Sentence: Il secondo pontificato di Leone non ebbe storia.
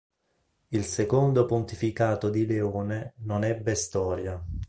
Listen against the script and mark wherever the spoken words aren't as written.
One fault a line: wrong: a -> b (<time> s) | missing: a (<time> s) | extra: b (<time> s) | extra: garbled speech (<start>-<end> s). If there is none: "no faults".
no faults